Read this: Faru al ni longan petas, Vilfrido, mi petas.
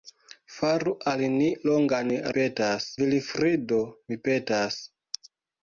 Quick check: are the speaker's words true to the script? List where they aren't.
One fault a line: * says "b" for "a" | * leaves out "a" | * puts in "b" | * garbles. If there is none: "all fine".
all fine